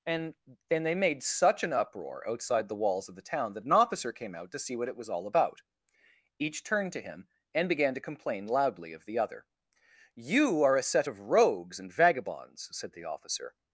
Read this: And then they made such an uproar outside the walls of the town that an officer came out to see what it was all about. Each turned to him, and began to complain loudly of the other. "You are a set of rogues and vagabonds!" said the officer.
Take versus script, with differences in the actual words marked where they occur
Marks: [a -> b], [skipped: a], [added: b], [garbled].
And then they made such an uproar outside the walls of the town that an officer came out to see what it was all about. Each turned to him, and began to complain loudly of the other. "You are a set of rogues and vagabonds!" said the officer.